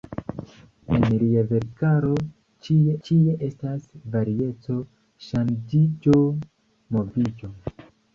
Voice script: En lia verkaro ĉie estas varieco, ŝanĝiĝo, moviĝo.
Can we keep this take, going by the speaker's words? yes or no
no